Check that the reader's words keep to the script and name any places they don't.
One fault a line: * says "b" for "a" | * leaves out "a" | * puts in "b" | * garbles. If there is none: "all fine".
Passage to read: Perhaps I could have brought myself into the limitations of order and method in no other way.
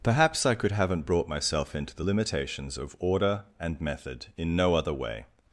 * says "haven't" for "have"